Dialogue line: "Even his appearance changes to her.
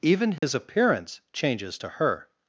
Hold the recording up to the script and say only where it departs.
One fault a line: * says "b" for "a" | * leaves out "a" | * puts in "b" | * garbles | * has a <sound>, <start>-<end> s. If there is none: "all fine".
* has a dropout, 0.4-0.4 s